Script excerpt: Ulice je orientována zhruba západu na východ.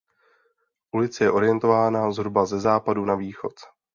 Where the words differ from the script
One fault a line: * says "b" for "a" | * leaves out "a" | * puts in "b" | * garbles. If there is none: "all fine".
* puts in "ze"